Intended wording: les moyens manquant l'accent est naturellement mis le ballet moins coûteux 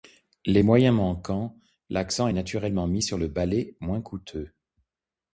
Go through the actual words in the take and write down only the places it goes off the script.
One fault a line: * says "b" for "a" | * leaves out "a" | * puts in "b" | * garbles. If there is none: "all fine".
* puts in "sur"